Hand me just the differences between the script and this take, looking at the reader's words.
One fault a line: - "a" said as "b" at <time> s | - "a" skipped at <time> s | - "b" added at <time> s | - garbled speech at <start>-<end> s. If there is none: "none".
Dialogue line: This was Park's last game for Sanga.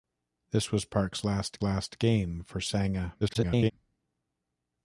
- "last" added at 1.6 s
- garbled speech at 3.2-3.7 s